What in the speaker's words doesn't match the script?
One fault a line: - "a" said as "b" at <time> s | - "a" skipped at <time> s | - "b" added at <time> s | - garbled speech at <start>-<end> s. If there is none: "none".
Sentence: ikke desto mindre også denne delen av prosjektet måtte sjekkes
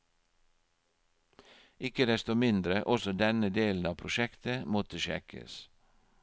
none